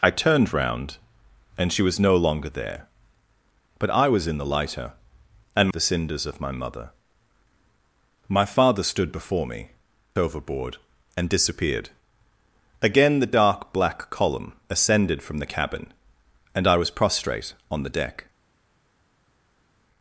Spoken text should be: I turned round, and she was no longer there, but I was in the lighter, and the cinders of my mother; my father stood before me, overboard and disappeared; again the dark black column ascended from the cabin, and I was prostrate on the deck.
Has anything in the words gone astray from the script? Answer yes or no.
no